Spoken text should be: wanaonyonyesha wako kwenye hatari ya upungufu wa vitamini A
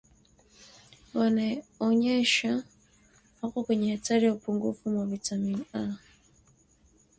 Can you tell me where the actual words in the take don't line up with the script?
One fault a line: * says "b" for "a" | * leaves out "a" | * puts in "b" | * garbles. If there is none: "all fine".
all fine